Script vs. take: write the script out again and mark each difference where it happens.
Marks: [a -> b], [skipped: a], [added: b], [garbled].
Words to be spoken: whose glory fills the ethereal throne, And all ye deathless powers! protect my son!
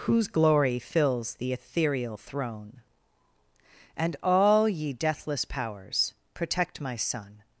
whose glory fills the ethereal throne, And all ye deathless powers! protect my son!